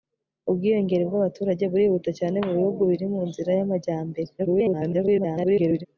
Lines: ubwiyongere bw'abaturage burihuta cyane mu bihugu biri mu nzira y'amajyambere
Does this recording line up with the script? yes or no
no